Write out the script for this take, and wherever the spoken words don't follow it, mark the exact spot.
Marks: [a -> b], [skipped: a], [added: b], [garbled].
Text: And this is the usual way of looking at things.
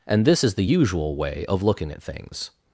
And this is the usual way of looking at things.